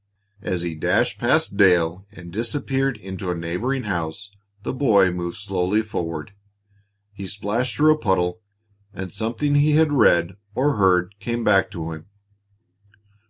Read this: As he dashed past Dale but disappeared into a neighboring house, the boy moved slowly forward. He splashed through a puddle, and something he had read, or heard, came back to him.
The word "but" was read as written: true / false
false